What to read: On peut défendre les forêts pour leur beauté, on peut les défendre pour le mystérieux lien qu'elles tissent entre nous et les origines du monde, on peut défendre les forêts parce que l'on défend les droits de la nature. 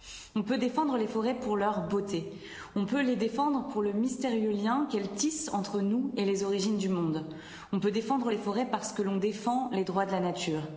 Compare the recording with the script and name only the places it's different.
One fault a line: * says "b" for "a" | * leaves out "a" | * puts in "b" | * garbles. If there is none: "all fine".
all fine